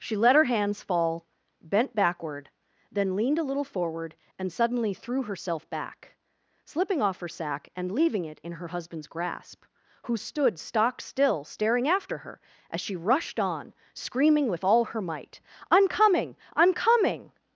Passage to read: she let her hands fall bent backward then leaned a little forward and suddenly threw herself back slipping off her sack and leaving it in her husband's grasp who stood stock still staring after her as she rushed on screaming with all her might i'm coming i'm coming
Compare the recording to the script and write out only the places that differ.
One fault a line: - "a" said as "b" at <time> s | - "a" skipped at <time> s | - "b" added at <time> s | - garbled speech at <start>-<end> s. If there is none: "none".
none